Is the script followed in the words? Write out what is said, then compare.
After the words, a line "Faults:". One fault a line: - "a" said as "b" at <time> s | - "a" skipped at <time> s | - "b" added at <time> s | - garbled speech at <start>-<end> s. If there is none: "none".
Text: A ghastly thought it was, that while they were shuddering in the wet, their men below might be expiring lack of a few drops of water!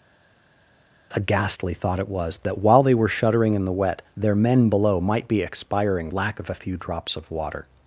A ghastly thought it was, that while they were shuddering in the wet, their men below might be expiring lack of a few drops of water!
Faults:
none